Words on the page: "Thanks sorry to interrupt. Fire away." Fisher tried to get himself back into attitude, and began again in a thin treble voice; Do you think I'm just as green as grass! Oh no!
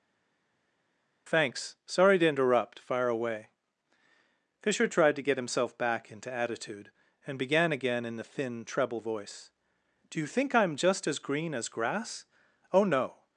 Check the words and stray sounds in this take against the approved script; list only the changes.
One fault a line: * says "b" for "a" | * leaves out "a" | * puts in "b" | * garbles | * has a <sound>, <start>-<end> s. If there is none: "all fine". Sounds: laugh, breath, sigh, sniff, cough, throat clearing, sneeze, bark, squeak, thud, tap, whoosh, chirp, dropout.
* says "the" for "a"